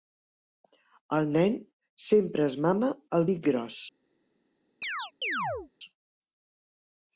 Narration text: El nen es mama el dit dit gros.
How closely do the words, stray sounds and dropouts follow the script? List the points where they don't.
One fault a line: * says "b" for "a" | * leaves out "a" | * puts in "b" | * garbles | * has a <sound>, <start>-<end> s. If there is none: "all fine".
* puts in "sempre"
* leaves out "dit"
* has a chirp, 4.8-5.7 s